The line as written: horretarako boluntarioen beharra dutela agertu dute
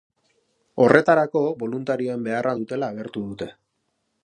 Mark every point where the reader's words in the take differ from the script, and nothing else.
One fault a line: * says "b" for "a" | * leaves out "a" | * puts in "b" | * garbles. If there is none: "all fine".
all fine